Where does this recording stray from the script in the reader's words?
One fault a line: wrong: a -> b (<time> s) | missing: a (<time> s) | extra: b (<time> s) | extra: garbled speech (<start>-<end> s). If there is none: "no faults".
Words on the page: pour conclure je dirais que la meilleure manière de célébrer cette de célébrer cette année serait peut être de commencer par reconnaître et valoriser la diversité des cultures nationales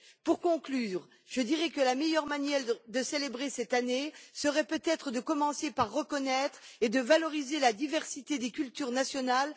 missing: de célébrer cette (3.7 s)